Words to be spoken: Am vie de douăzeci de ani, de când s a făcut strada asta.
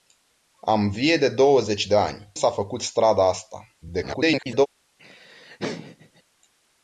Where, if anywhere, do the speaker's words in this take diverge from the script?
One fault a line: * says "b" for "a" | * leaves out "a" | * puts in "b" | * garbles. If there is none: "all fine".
* leaves out "de când"
* garbles